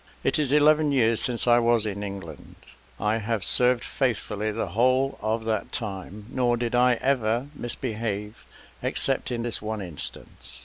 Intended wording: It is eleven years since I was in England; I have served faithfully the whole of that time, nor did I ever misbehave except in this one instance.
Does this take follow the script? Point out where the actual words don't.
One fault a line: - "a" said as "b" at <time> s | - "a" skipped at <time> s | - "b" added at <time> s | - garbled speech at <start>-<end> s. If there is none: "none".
none